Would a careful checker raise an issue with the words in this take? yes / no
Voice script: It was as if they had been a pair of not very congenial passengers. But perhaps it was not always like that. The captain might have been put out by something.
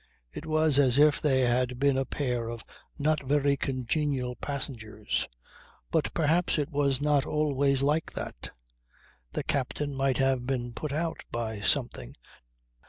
no